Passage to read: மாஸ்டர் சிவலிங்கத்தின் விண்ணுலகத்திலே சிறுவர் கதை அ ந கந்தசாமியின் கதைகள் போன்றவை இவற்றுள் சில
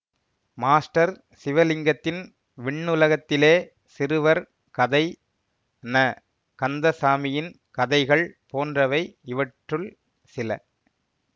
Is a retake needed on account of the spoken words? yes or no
yes